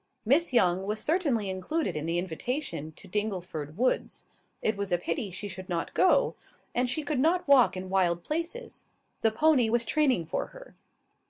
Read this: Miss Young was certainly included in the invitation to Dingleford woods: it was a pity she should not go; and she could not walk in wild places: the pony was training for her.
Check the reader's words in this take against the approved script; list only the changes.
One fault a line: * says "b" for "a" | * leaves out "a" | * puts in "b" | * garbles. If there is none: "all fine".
all fine